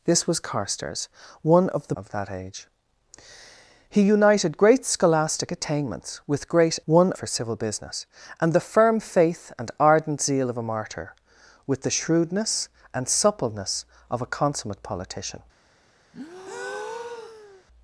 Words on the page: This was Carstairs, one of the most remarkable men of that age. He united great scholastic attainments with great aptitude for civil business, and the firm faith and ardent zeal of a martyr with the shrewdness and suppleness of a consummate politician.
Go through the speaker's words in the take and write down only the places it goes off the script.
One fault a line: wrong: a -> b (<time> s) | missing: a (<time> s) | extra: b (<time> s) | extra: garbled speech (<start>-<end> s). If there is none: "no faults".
missing: most remarkable men (1.9 s)
wrong: aptitude -> one (6.9 s)